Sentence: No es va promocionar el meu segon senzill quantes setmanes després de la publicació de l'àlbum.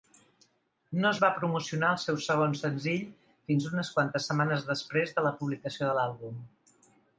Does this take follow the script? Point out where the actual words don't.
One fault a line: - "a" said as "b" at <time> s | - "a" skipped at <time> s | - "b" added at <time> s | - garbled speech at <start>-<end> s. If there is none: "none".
- "meu" said as "seu" at 2.0 s
- "fins unes" added at 3.5 s